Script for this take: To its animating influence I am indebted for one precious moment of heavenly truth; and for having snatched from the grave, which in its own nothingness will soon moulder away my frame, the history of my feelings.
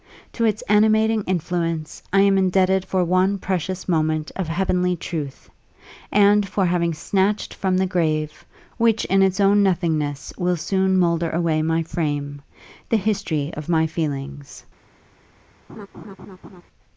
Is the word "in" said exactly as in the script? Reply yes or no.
yes